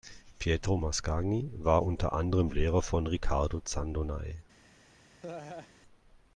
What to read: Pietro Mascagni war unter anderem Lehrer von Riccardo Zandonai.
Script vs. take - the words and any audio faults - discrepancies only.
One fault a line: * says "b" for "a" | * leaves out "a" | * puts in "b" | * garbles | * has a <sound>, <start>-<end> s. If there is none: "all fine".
* has a laugh, 5.2-5.7 s